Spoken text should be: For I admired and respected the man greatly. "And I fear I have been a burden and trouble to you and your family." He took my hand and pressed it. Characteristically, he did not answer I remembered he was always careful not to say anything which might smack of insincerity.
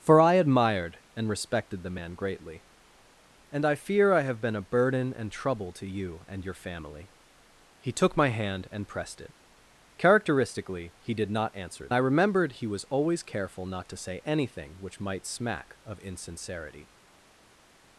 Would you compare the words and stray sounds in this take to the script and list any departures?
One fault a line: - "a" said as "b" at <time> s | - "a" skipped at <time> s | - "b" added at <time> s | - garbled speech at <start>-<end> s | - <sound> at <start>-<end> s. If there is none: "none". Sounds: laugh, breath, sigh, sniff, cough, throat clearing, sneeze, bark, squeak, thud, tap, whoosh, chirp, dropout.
none